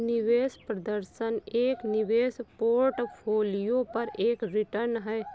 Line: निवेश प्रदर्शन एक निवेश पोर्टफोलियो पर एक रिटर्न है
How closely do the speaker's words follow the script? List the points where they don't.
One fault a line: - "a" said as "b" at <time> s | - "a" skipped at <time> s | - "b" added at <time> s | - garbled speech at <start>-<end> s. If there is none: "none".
none